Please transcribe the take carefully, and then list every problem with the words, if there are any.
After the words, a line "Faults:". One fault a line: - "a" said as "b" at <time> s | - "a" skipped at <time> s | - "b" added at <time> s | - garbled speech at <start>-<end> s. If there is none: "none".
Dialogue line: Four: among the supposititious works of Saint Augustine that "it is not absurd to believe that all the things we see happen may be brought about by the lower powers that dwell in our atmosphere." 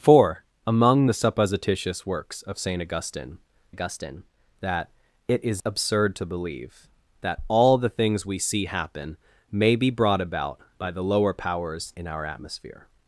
Four: among the supposititious works of Saint Augustine Augustine that "it is absurd to believe that all the things we see happen may be brought about by the lower powers in our atmosphere."
Faults:
- "Augustine" added at 3.7 s
- "not" skipped at 5.6 s
- "that dwell" skipped at 11.9 s